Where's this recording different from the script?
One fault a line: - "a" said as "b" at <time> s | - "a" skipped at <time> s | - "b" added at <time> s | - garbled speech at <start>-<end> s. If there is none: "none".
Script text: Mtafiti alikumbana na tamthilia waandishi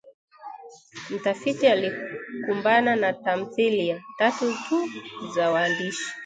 - "tatu tu za" added at 4.2 s